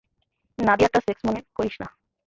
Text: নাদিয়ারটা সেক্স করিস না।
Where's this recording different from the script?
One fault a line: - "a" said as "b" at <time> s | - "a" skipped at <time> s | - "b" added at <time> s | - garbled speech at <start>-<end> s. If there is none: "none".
- "মনে" added at 1.3 s